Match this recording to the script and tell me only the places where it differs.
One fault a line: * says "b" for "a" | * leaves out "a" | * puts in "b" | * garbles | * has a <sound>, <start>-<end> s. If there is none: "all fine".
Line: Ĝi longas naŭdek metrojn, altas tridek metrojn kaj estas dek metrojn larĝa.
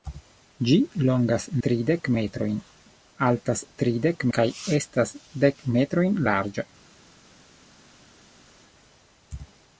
* says "tridek" for "naŭdek"
* leaves out "metrojn"